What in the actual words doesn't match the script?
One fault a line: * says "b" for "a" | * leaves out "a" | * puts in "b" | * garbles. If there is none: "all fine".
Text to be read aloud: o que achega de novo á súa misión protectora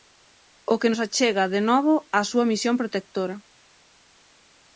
* puts in "nos"